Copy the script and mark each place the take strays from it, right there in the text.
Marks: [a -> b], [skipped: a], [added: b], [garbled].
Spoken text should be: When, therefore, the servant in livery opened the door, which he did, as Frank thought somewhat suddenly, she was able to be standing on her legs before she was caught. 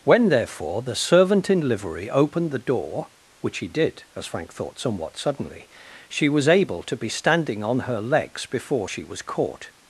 When, therefore, the servant in livery opened the door, which he did, as Frank thought somewhat suddenly, she was able to be standing on her legs before she was caught.